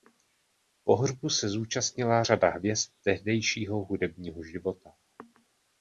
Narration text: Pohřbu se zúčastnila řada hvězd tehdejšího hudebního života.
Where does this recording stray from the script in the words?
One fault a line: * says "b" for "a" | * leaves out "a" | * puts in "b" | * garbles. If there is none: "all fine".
all fine